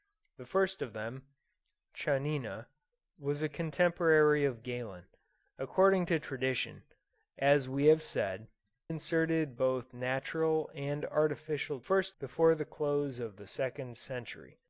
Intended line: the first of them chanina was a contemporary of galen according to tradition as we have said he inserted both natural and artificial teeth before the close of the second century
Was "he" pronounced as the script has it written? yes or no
no